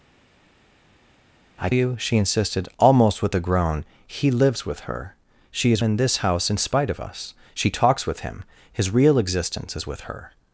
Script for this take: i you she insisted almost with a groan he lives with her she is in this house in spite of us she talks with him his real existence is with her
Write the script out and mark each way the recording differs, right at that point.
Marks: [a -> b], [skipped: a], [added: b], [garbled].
i you she insisted almost with a groan he lives with her she is in this house in spite of us she talks with him his real existence is with her